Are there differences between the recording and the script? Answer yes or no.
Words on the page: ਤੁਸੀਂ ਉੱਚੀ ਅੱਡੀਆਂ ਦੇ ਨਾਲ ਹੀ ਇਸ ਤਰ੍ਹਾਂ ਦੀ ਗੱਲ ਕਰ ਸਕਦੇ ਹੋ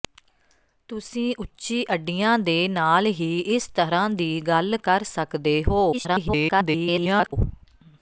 yes